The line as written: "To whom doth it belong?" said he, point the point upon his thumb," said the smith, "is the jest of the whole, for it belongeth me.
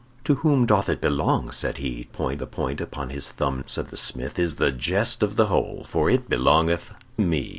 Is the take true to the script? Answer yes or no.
yes